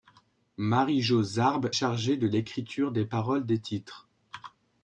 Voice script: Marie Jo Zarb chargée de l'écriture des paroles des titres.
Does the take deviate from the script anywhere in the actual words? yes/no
no